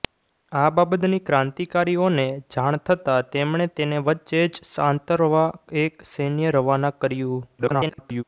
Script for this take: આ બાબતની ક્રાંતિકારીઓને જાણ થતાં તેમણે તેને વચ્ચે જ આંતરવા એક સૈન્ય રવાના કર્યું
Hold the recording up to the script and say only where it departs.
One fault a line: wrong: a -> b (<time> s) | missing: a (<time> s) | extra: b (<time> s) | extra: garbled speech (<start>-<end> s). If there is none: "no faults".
extra: garbled speech (7.6-8.2 s)